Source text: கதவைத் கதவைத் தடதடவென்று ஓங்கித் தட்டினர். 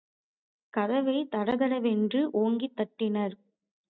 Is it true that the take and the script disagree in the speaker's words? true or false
true